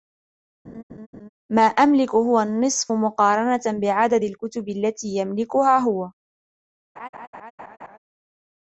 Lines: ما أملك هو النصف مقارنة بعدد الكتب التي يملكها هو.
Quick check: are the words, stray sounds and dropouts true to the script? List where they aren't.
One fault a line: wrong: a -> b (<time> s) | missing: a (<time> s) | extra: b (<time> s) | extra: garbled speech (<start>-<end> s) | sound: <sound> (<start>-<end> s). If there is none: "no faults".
sound: laugh (0.6-1.3 s)
sound: laugh (7.0-8.0 s)